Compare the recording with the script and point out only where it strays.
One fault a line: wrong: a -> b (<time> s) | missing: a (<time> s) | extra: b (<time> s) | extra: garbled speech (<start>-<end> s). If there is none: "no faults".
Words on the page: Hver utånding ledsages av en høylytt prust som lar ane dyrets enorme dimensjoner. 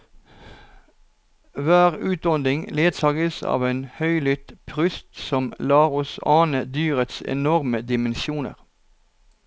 extra: oss (6.0 s)